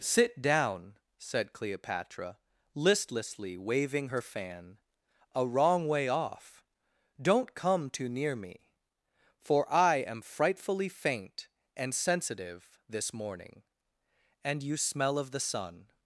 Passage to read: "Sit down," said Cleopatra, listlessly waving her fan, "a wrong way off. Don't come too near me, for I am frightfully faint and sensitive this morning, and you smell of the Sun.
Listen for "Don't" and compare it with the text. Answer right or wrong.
right